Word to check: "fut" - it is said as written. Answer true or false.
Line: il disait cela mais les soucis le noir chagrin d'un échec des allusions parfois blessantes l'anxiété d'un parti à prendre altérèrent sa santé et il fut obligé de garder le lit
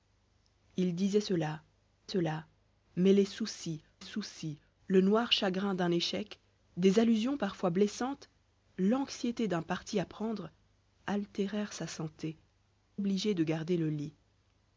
false